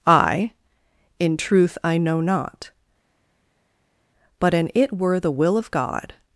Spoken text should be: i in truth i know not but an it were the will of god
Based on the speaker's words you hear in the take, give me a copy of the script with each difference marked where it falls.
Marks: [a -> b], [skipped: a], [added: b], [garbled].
i in truth i know not but an it were the will of god